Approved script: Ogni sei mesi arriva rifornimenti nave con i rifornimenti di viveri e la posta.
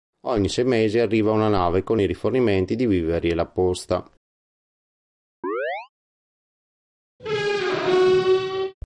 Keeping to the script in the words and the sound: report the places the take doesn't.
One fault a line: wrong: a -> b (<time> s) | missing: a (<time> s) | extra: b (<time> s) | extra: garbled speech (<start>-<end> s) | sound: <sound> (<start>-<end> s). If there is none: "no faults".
wrong: rifornimenti -> una (1.3 s)
sound: chirp (5.4-5.9 s)
sound: squeak (7.2-8.7 s)